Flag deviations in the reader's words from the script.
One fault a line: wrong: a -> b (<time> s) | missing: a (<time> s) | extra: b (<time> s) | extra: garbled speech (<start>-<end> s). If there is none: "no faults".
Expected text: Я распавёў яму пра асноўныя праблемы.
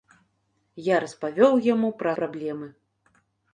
missing: асноўныя (2.1 s)